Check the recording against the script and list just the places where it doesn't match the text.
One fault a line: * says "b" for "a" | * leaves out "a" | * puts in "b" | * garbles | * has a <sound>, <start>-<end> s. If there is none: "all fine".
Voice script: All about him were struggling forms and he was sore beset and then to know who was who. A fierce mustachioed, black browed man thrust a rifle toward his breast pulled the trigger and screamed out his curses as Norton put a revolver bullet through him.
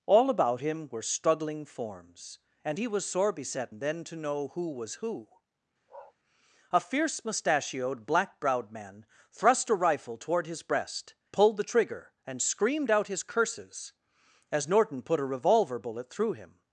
* has a bark, 5.9-6.1 s